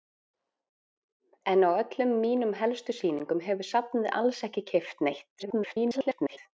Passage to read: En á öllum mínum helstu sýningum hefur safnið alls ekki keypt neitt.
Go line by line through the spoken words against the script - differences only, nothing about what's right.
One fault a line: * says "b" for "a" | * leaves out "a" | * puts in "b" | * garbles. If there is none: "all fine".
* garbles